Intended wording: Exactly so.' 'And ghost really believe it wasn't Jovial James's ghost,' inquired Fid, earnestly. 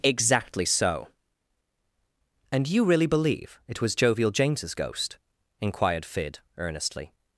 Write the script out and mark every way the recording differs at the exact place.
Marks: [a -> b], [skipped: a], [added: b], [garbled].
Exactly so.' 'And [ghost -> you] really believe it [wasn't -> was] Jovial James's ghost,' inquired Fid, earnestly.